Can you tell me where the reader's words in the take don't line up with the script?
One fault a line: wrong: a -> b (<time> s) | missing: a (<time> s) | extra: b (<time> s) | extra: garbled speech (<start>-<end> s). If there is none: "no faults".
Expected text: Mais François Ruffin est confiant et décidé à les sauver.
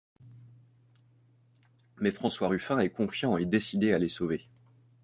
no faults